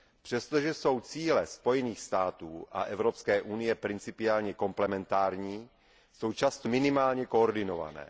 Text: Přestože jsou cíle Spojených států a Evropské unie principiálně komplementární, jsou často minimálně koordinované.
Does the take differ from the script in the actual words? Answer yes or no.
no